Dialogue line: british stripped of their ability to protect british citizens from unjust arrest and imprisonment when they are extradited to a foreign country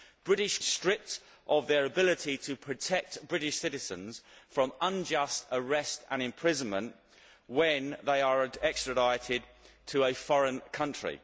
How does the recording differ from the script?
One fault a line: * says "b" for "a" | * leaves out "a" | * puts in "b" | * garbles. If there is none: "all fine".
all fine